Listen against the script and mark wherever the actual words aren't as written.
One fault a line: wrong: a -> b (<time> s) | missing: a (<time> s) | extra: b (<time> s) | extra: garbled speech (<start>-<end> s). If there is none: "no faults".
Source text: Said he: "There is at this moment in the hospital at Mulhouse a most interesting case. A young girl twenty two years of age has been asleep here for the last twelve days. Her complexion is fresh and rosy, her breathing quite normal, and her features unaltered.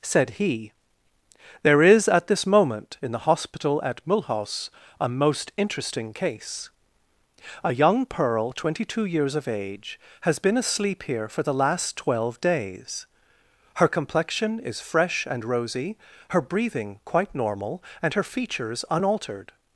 wrong: girl -> pearl (8.1 s)